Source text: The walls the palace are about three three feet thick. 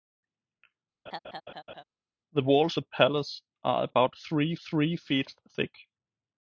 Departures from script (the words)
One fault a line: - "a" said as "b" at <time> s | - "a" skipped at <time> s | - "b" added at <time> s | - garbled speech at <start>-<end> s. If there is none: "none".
none